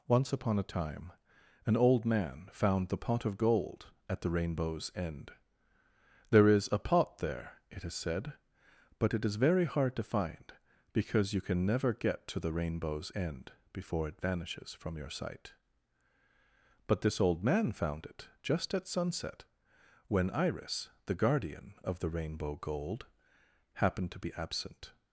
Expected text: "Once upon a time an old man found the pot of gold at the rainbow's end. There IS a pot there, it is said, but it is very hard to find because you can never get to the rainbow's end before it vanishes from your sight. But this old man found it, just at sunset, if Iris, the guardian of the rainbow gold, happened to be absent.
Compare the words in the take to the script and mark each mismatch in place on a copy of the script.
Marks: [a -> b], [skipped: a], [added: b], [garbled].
"Once upon a time an old man found the pot of gold at the rainbow's end. There IS a pot there, it is said, but it is very hard to find because you can never get to the rainbow's end before it vanishes from your sight. But this old man found it, just at sunset, [if -> when] Iris, the guardian of the rainbow gold, happened to be absent.